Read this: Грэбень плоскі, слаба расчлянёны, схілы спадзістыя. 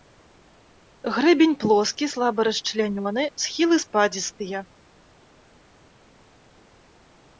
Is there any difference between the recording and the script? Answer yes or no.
no